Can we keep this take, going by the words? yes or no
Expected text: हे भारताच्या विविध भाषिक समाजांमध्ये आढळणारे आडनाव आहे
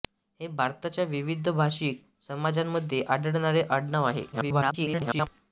no